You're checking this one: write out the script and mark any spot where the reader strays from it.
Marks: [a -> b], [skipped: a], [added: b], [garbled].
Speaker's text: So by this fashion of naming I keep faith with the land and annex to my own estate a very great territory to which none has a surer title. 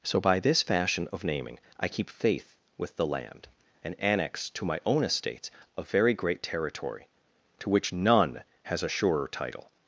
So by this fashion of naming I keep faith with the land and annex to my own [estate -> estates] a very great territory to which none has a surer title.